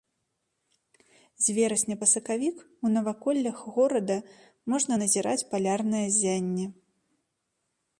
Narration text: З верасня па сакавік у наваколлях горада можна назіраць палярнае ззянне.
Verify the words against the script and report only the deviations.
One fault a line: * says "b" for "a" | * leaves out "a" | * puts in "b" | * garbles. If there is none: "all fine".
all fine